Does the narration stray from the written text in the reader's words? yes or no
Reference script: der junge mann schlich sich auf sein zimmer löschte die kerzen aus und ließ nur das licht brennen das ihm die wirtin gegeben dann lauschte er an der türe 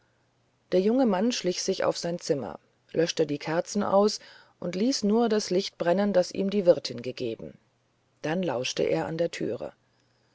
no